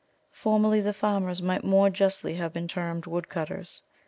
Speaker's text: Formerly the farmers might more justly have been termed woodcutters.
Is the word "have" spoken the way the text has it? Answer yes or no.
yes